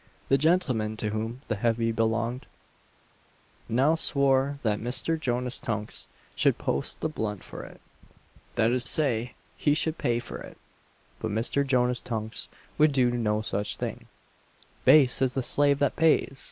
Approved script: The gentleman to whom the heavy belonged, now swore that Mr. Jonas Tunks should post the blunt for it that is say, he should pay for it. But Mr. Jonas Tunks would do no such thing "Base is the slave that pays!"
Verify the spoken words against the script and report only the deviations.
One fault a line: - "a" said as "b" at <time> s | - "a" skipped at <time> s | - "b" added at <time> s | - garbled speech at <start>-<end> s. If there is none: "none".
none